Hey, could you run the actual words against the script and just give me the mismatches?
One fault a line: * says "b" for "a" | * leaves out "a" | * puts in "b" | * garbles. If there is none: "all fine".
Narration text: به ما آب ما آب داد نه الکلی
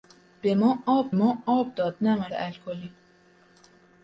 all fine